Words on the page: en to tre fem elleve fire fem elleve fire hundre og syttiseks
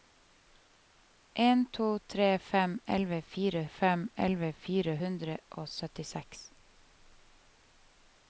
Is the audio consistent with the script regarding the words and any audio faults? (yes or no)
yes